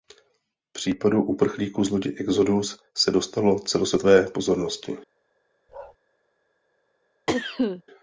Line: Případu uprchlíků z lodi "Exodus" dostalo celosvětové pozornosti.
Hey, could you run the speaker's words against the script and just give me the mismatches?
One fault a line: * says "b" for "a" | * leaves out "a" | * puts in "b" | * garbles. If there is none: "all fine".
* puts in "se"